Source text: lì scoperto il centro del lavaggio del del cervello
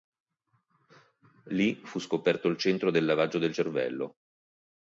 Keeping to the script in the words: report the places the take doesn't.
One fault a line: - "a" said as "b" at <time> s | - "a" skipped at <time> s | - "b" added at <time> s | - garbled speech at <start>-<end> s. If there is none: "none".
- "fu" added at 1.8 s
- "del" skipped at 3.5 s